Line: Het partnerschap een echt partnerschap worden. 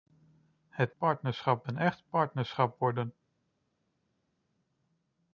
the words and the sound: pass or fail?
pass